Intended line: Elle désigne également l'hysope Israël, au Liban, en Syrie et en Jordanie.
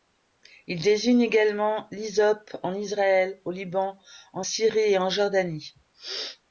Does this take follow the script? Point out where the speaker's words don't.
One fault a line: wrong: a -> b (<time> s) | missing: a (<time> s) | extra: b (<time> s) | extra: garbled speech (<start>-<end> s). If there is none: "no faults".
wrong: Elle -> Il (0.7 s)
extra: en (2.6 s)